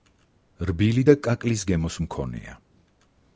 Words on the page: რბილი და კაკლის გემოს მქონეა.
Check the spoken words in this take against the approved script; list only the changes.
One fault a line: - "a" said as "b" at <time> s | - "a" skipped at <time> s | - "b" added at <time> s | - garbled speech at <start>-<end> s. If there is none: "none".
none